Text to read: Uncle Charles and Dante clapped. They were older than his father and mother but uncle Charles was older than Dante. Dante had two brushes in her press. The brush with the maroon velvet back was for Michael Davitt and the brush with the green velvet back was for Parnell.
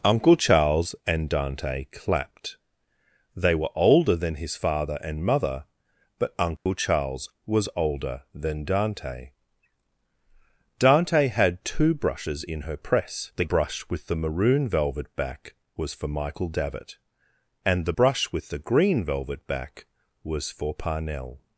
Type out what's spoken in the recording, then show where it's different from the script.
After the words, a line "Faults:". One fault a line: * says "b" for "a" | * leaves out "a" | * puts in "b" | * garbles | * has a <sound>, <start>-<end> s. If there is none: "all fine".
Uncle Charles and Dante clapped. They were older than his father and mother but uncle Charles was older than Dante. Dante had two brushes in her press. The brush with the maroon velvet back was for Michael Davitt and the brush with the green velvet back was for Parnell.
Faults:
* has a dropout, 6.6-6.7 s